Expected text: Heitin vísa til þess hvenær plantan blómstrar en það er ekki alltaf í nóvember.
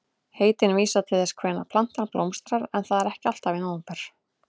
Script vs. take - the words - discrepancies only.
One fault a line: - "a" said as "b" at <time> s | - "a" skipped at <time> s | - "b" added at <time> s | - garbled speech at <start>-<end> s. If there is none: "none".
none